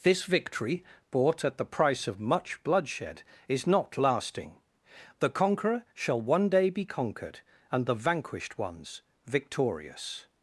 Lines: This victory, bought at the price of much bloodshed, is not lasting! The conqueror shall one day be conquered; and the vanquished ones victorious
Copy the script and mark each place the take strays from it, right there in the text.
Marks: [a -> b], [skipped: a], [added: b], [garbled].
This victory, bought at the price of much bloodshed, is not lasting! The conqueror shall one day be conquered; and the vanquished ones victorious